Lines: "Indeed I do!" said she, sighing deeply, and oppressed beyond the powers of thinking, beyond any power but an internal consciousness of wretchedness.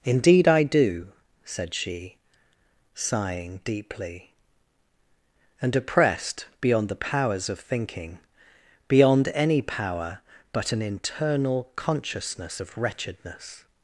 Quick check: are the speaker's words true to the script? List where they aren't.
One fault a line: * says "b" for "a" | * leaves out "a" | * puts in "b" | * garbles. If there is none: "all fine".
all fine